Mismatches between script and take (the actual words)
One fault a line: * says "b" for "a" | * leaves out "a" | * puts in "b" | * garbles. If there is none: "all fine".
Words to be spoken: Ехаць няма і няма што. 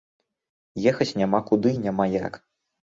* puts in "куды"
* says "як" for "што"